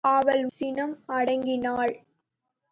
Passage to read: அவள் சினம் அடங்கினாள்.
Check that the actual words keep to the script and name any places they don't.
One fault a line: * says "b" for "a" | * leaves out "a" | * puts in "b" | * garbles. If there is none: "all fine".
all fine